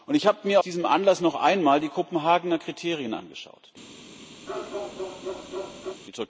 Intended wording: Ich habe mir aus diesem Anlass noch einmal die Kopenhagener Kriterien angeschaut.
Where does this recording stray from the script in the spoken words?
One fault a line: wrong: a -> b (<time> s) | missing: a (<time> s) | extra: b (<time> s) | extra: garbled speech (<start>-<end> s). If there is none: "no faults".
missing: aus (0.6 s)